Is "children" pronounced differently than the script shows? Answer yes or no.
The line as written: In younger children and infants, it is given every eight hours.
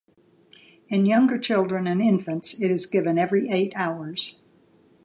no